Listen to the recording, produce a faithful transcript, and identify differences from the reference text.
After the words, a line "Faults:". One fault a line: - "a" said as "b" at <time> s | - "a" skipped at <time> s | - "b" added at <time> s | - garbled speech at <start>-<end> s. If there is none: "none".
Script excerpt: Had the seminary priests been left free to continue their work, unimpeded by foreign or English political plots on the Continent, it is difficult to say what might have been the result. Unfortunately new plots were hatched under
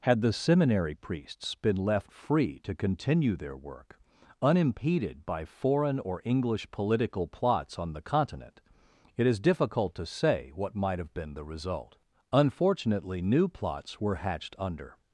Had the seminary priests been left free to continue their work, unimpeded by foreign or English political plots on the Continent, it is difficult to say what might have been the result. Unfortunately new plots were hatched under
Faults:
none